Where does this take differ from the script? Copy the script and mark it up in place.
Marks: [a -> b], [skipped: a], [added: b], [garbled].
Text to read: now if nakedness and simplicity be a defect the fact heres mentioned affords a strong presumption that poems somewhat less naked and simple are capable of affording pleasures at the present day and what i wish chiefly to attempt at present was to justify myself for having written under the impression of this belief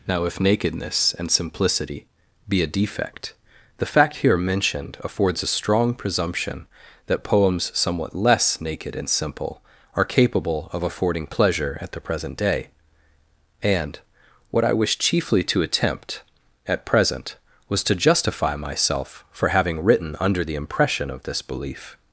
now if nakedness and simplicity be a defect the fact [heres -> here] mentioned affords a strong presumption that poems somewhat less naked and simple are capable of affording [pleasures -> pleasure] at the present day and what i wish chiefly to attempt at present was to justify myself for having written under the impression of this belief